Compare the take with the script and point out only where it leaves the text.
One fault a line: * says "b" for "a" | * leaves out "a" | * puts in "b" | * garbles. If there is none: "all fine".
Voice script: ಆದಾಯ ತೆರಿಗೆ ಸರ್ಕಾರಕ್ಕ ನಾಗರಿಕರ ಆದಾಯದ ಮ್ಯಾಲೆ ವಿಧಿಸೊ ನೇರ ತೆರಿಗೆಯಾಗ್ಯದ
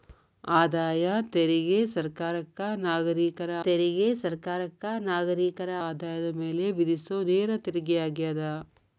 * puts in "ತೆರಿಗೆ ಸರ್ಕಾರಕ್ಕ ನಾಗರಿಕರ"